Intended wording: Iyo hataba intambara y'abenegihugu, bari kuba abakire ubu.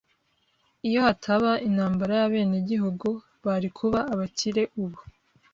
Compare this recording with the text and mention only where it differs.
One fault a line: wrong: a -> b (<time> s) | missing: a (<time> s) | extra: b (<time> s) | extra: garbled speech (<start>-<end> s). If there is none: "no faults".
no faults